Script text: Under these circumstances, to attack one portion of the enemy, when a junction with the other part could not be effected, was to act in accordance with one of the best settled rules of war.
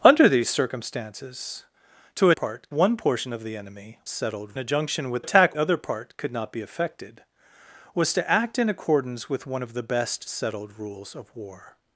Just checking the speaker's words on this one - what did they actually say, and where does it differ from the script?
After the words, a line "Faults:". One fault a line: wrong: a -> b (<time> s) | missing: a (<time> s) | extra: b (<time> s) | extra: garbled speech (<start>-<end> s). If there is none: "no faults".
Under these circumstances, to part one portion of the enemy, settled a junction with attack other part could not be effected, was to act in accordance with one of the best settled rules of war.
Faults:
wrong: attack -> part (2.3 s)
wrong: when -> settled (4.1 s)
wrong: the -> attack (5.2 s)